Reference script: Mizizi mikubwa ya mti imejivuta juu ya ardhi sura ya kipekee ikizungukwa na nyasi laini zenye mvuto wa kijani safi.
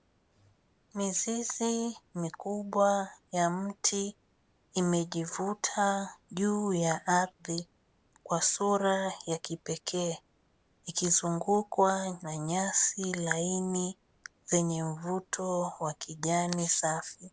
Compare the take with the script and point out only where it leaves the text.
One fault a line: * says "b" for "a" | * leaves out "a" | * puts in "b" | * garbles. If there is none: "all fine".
* puts in "kwa"